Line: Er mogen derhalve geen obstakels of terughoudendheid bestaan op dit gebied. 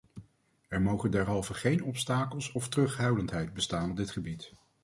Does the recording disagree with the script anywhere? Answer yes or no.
no